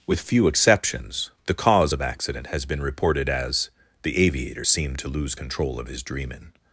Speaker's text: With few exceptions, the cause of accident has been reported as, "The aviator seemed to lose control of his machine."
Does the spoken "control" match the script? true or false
true